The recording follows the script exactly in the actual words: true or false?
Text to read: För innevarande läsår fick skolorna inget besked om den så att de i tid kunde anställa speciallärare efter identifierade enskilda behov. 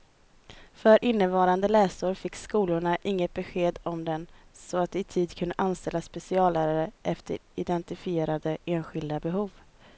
true